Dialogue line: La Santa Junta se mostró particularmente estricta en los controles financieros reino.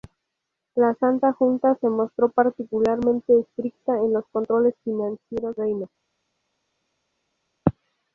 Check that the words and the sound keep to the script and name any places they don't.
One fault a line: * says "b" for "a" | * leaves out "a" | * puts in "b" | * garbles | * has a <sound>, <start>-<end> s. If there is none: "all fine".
all fine